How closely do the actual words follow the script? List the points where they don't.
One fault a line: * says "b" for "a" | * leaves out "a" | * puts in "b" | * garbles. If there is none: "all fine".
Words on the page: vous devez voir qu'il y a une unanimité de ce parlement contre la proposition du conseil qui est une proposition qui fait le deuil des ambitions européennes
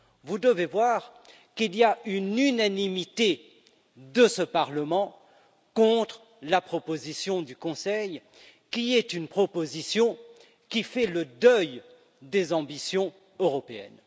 all fine